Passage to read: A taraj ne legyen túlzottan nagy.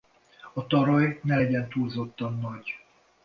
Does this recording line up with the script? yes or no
yes